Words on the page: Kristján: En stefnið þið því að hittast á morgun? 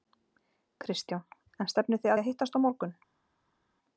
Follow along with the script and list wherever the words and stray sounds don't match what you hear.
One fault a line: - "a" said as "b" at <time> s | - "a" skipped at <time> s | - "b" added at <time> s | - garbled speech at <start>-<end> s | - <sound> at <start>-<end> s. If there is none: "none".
none